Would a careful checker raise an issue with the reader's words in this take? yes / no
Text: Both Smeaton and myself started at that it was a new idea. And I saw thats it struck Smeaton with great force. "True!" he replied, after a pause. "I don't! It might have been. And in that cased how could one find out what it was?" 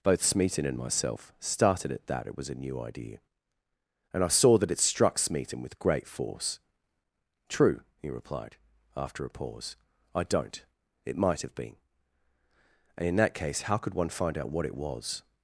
yes